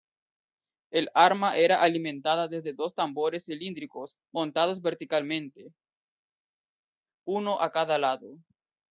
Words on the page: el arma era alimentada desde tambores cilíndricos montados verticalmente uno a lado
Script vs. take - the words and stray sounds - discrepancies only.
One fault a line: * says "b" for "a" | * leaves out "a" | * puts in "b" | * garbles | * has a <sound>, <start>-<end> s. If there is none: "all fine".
* puts in "dos"
* puts in "cada"